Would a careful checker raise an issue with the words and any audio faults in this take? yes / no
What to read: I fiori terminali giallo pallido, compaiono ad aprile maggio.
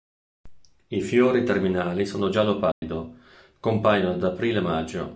yes